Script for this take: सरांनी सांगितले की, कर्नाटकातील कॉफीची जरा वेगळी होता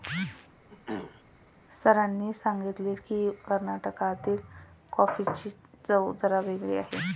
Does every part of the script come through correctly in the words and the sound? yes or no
no